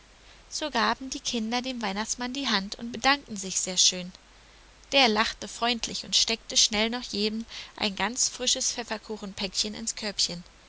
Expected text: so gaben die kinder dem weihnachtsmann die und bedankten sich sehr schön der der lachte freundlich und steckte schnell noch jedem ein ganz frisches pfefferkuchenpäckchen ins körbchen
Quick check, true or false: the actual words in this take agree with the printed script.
false